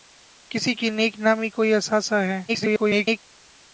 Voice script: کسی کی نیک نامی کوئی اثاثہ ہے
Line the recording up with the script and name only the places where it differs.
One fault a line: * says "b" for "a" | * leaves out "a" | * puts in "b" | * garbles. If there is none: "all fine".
* garbles